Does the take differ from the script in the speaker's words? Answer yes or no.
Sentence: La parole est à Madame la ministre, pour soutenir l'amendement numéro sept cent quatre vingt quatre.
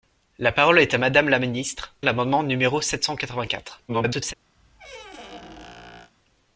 yes